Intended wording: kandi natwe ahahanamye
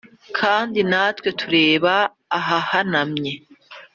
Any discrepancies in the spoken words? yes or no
yes